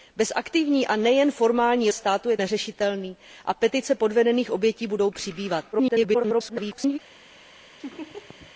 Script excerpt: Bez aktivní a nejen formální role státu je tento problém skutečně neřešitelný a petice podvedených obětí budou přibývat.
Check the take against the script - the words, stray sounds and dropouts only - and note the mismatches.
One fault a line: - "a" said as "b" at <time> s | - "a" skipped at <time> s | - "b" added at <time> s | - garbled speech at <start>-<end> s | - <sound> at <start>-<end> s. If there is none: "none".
- "role" skipped at 1.9 s
- "tento problém skutečně" skipped at 2.4 s
- garbled speech at 5.7-7.0 s
- laugh at 7.8-8.5 s